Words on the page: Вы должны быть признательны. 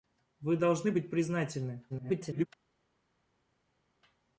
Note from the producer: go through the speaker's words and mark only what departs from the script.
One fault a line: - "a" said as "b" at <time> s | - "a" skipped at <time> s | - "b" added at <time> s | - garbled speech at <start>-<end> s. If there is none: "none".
- garbled speech at 1.9-2.5 s